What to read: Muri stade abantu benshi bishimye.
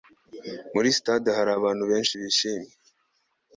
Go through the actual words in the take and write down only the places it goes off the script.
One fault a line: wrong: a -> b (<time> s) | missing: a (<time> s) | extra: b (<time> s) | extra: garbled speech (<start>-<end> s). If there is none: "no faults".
extra: hari (1.4 s)